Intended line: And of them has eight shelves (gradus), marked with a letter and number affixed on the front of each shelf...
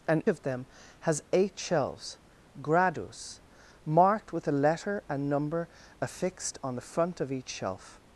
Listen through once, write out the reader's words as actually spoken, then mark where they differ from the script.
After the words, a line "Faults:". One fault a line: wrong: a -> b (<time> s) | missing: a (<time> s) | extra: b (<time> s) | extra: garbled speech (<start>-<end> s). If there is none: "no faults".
And of them has eight shelves (gradus), marked with a letter and number affixed on the front of each shelf...
Faults:
no faults